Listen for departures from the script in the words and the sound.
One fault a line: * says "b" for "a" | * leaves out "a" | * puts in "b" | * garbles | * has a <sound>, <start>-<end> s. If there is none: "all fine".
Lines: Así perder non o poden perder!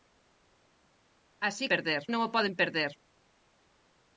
all fine